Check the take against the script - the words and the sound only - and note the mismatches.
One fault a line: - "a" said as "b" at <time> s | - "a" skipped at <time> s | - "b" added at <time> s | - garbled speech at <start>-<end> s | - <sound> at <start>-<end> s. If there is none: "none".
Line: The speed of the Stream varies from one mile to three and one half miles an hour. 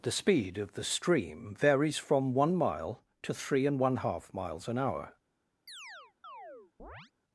- chirp at 5.7-7.1 s